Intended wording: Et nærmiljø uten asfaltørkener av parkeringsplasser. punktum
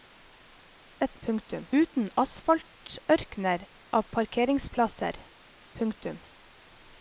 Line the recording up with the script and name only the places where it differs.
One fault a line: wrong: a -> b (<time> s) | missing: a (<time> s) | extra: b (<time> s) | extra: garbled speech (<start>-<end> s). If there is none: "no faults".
wrong: nærmiljø -> punktum (1.3 s)